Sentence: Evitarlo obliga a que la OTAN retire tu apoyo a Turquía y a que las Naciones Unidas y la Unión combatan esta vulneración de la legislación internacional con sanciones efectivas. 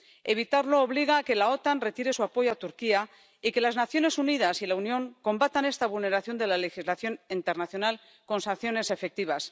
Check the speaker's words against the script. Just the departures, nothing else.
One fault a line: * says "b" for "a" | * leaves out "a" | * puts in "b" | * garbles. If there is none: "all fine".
* says "su" for "tu"